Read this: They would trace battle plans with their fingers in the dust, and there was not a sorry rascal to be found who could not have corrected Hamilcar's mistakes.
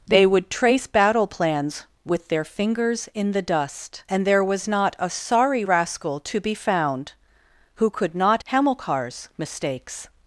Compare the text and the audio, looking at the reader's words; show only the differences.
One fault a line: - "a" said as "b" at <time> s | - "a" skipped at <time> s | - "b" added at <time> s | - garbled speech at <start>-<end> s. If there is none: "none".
- "have corrected" skipped at 8.4 s